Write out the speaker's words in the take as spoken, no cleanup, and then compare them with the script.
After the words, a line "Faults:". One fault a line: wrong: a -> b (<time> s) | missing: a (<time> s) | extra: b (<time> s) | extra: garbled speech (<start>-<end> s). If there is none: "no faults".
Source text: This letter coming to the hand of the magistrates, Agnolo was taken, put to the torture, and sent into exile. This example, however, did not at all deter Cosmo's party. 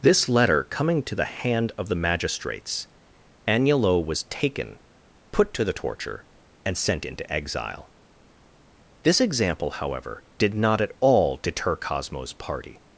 This letter coming to the hand of the magistrates, Agnolo was taken, put to the torture, and sent into exile. This example, however, did not at all deter Cosmo's party.
Faults:
no faults